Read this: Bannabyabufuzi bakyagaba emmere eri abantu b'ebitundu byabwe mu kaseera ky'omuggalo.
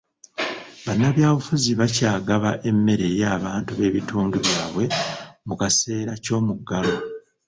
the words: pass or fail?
pass